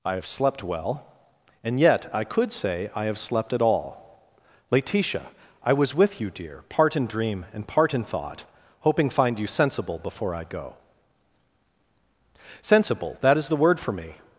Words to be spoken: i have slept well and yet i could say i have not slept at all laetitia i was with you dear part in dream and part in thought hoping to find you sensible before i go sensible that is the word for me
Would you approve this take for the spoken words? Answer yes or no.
no